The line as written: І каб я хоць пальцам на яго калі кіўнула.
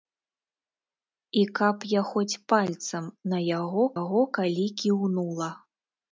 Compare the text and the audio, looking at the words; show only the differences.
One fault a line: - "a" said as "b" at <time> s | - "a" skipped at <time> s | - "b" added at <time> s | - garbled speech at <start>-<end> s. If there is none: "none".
- "яго" added at 4.0 s